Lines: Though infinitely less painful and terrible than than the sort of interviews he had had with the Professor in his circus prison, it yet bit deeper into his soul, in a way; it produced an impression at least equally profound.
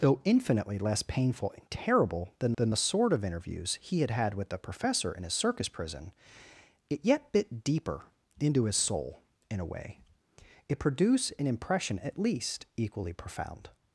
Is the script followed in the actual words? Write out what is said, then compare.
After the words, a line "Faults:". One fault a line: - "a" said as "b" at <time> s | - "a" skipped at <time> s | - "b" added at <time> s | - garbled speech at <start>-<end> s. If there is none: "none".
Though infinitely less painful and terrible than than the sort of interviews he had had with the Professor in his circus prison, it yet bit deeper into his soul, in a way; it produced an impression at least equally profound.
Faults:
none